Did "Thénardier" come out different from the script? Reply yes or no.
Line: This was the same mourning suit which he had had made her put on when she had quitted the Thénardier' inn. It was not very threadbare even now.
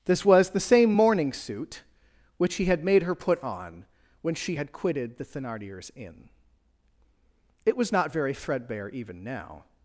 yes